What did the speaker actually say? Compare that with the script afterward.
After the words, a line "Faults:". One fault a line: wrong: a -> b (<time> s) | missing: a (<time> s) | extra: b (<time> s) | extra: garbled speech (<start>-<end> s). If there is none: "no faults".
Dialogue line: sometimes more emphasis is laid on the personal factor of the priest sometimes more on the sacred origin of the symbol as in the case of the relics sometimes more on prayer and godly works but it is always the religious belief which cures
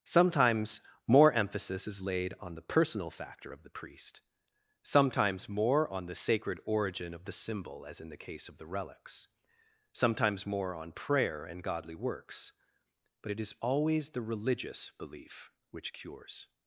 sometimes more emphasis is laid on the personal factor of the priest sometimes more on the sacred origin of the symbol as in the case of the relics sometimes more on prayer and godly works but it is always the religious belief which cures
Faults:
no faults